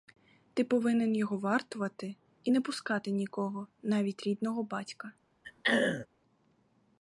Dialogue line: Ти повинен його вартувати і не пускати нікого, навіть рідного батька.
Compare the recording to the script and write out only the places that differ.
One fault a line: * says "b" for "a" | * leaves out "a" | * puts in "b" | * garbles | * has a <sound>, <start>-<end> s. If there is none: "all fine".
* has a throat clearing, 5.4-6.1 s